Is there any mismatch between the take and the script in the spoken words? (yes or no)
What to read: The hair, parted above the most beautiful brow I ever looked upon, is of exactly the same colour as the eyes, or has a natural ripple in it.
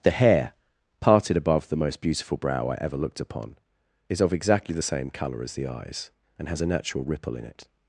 yes